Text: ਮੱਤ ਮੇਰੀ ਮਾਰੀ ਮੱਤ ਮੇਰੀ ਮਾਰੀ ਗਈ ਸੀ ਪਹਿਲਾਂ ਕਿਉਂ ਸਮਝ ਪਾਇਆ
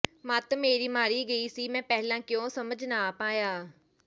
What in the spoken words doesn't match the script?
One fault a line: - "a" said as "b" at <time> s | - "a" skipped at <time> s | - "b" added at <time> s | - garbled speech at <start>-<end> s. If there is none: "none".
- "ਮੱਤ ਮੇਰੀ ਮਾਰੀ" skipped at 1.2 s
- "ਮੈਂ" added at 1.7 s
- "ਨਾ" added at 2.9 s